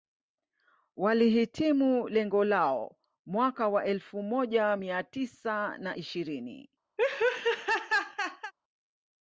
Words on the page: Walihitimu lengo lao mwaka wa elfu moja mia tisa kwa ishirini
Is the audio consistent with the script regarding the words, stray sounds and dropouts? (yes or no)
no